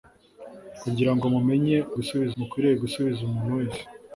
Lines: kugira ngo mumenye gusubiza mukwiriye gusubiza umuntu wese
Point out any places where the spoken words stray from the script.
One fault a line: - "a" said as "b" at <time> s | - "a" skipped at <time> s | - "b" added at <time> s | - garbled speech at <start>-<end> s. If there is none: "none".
none